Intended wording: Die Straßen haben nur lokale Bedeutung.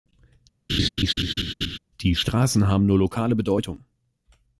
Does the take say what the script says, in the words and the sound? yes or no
no